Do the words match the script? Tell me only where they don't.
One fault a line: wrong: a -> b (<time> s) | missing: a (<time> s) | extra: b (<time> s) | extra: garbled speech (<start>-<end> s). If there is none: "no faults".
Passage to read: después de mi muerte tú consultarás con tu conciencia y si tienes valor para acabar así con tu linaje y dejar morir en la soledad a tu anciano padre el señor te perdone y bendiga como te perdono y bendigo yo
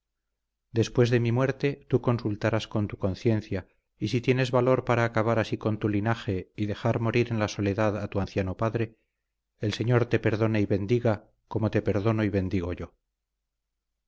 no faults